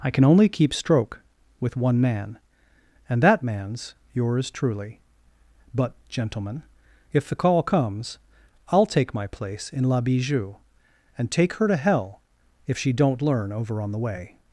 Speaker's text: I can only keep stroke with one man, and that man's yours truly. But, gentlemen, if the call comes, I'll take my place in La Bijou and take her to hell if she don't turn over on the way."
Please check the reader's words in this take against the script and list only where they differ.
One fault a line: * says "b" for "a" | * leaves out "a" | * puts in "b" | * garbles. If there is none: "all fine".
* says "learn" for "turn"